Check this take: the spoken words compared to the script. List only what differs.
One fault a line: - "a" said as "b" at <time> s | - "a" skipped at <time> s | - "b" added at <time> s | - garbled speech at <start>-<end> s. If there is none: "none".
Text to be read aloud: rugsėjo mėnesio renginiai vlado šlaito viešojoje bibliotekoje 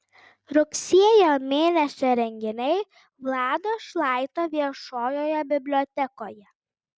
none